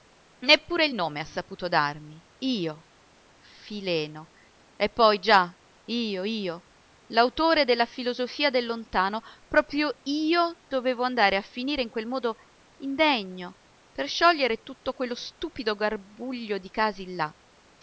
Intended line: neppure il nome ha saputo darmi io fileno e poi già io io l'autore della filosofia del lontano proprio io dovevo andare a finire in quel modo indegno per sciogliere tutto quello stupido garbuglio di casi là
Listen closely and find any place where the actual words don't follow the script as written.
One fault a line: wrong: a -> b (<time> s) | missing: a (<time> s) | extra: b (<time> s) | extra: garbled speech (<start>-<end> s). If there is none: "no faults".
no faults